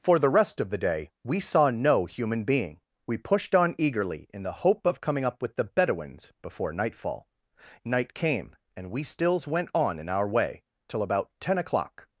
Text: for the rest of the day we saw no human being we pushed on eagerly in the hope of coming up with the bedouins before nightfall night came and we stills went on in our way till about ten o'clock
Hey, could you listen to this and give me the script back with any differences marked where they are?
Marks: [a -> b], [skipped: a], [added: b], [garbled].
for the rest of the day we saw no human being we pushed on eagerly in the hope of coming up with the bedouins before nightfall night came and we stills went on in our way till about ten o'clock